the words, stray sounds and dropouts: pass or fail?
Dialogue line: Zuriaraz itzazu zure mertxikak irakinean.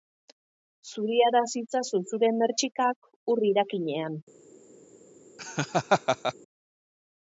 fail